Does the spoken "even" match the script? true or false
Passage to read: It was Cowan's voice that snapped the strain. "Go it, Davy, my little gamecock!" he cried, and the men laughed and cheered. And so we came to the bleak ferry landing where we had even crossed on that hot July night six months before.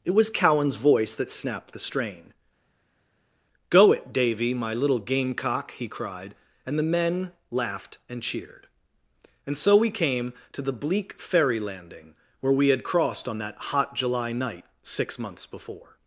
false